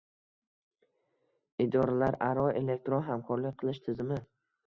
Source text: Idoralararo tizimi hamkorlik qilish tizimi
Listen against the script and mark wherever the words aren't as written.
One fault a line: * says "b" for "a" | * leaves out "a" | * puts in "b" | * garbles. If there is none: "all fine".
* says "elektron" for "tizimi"